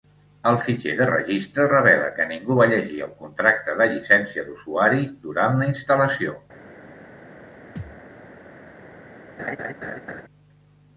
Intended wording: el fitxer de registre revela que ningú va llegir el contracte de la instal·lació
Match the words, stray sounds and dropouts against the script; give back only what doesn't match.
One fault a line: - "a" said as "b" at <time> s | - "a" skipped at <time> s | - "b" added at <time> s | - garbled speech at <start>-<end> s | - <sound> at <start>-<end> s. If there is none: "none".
- "llicència d'usuari durant" added at 3.9 s
- thud at 7.8-8.0 s
- laugh at 9.4-10.2 s